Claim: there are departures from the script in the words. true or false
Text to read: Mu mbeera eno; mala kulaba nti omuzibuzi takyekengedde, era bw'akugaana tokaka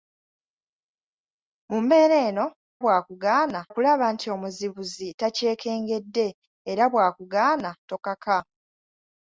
true